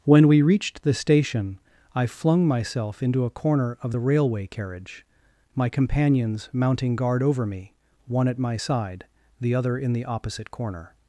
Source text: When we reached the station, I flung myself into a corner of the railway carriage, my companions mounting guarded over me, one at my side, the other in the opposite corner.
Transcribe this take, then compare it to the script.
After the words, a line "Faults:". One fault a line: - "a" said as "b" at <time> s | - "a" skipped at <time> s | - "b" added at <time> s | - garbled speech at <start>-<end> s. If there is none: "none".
When we reached the station, I flung myself into a corner of the railway carriage, my companions mounting guard over me, one at my side, the other in the opposite corner.
Faults:
- "guarded" said as "guard" at 6.9 s